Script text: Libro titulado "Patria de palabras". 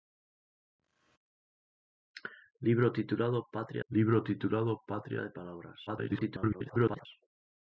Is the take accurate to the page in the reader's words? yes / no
no